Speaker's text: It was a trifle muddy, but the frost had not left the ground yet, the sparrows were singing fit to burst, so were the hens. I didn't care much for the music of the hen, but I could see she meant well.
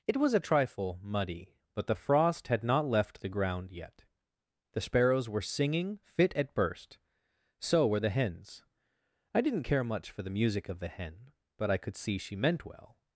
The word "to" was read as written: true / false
false